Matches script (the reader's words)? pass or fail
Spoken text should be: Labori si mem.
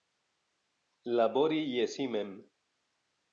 fail